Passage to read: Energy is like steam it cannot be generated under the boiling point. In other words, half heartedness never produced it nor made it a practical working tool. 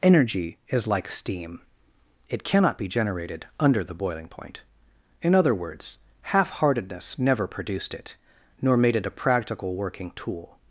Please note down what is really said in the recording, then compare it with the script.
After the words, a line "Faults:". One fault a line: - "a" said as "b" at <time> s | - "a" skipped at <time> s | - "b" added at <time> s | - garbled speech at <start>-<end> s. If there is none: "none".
Energy is like steam it cannot be generated under the boiling point. In other words, half heartedness never produced it nor made it a practical working tool.
Faults:
none